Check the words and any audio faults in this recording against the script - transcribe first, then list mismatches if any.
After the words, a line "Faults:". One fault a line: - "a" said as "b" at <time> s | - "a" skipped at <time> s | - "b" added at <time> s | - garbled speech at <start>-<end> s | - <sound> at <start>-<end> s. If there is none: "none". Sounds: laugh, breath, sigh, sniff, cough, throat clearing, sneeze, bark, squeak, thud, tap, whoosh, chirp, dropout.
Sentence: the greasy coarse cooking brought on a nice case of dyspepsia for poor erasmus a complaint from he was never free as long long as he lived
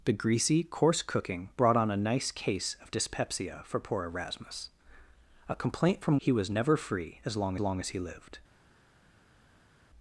the greasy coarse cooking brought on a nice case of dyspepsia for poor erasmus a complaint from he was never free as long long as he lived
Faults:
none